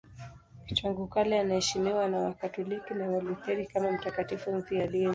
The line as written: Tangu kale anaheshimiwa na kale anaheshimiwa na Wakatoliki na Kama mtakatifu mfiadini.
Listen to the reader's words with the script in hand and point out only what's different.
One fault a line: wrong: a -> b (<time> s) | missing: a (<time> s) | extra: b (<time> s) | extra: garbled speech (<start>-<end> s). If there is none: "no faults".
wrong: kale anaheshimiwa -> Wakatoliki (2.2 s)
wrong: Wakatoliki na -> Walutheri (3.1 s)